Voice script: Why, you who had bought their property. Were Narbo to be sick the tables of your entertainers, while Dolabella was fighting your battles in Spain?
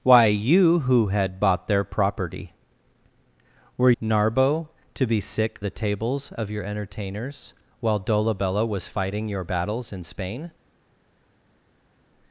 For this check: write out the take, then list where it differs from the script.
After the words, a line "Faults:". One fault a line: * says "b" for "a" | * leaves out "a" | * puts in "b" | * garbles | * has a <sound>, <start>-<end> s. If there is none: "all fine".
Why, you who had bought their property. Were Narbo to be sick the tables of your entertainers, while Dolabella was fighting your battles in Spain?
Faults:
all fine